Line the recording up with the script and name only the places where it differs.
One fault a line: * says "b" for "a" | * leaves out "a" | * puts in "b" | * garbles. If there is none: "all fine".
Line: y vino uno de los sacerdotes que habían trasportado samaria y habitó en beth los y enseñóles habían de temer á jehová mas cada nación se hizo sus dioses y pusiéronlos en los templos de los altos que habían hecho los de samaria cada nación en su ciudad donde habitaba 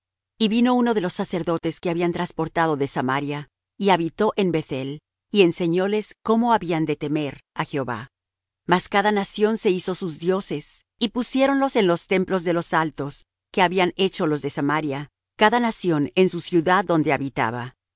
* puts in "de"
* says "el" for "los"
* puts in "cómo"